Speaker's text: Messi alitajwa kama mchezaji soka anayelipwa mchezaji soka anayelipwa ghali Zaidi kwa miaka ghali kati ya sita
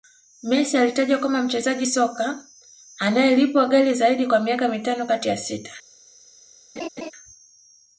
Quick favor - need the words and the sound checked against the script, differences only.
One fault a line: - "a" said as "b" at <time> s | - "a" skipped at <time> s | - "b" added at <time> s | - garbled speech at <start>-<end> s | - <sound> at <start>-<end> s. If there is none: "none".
- "mchezaji soka anayelipwa" skipped at 3.7 s
- "ghali" said as "mitano" at 4.7 s
- laugh at 6.8-7.1 s